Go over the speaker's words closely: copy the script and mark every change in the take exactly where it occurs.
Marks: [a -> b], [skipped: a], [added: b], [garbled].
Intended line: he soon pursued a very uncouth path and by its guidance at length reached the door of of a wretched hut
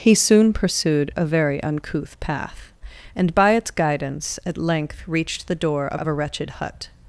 he soon pursued a very uncouth path and by its guidance at length reached the door of of a wretched hut